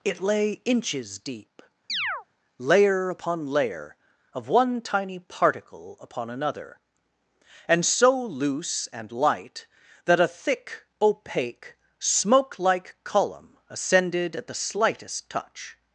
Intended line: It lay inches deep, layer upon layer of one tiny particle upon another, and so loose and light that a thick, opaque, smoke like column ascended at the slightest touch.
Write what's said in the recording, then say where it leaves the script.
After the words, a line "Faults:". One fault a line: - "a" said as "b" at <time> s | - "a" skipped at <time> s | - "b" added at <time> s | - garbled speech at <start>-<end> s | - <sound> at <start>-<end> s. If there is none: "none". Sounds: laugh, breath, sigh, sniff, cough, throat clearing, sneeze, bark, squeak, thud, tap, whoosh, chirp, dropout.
It lay inches deep, layer upon layer of one tiny particle upon another, and so loose and light that a thick, opaque, smoke like column ascended at the slightest touch.
Faults:
- chirp at 1.9-2.3 s